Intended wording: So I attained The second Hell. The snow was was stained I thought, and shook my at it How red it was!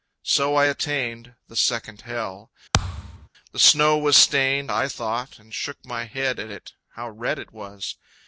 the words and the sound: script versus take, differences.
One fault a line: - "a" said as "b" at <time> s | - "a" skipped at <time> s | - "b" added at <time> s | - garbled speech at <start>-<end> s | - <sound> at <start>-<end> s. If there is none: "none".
- thud at 2.7-3.3 s
- "was" skipped at 4.2 s
- "head" added at 6.0 s